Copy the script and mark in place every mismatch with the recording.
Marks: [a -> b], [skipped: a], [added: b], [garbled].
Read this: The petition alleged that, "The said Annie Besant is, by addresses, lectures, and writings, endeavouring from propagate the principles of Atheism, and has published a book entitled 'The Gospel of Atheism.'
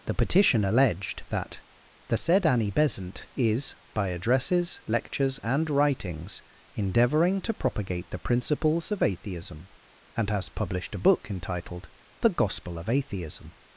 The petition alleged that, "The said Annie Besant is, by addresses, lectures, and writings, endeavouring [from -> to] propagate the principles of Atheism, and has published a book entitled 'The Gospel of Atheism.'